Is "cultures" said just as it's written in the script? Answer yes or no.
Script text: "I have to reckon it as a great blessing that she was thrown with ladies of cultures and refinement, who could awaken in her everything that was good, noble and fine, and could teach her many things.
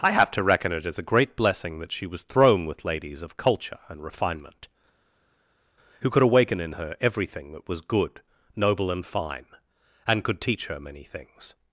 no